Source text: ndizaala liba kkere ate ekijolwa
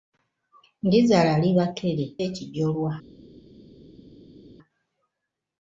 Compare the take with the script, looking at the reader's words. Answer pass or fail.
fail